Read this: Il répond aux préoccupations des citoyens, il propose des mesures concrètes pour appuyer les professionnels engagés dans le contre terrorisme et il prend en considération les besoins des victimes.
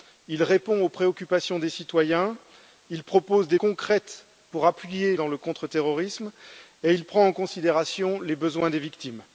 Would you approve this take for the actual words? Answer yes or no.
no